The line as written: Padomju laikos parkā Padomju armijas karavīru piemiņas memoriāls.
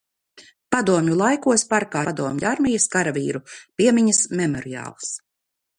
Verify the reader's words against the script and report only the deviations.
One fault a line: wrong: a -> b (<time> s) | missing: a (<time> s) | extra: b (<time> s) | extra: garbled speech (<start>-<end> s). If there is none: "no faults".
no faults